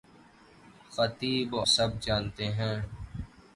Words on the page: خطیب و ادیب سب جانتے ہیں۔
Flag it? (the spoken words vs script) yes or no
yes